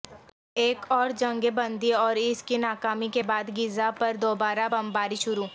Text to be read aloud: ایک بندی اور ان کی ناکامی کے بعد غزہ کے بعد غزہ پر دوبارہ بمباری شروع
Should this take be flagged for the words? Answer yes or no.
yes